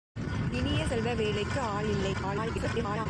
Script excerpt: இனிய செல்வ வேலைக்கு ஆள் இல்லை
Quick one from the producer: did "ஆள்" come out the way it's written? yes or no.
yes